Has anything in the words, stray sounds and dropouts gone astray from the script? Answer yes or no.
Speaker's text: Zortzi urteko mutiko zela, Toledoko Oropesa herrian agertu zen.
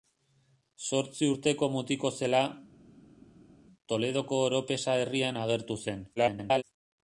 yes